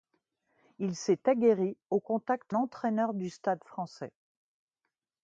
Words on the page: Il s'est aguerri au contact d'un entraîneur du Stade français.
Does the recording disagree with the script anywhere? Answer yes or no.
yes